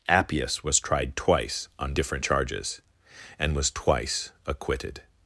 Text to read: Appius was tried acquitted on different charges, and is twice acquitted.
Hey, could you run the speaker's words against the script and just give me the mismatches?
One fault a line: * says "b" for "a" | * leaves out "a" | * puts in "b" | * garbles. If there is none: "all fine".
* says "twice" for "acquitted"
* says "was" for "is"